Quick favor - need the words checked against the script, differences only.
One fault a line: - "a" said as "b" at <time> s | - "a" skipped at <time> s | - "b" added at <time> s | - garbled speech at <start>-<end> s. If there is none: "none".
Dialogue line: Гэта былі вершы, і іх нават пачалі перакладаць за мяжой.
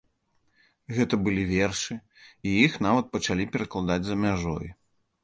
none